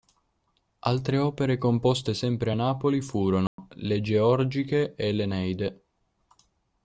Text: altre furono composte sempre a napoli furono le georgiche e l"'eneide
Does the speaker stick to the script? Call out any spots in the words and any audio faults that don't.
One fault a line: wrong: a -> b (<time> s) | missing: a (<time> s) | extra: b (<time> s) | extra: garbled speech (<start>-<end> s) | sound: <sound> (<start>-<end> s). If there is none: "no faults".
wrong: furono -> opere (1.2 s)
sound: dropout (3.5-3.6 s)